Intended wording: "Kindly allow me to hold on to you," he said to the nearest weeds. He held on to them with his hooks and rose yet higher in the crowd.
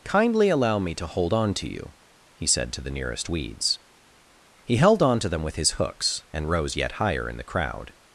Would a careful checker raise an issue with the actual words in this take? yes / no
no